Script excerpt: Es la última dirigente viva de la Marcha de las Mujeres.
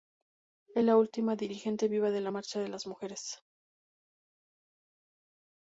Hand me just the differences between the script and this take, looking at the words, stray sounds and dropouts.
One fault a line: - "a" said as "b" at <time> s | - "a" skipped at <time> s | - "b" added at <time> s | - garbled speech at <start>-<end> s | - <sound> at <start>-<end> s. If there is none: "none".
none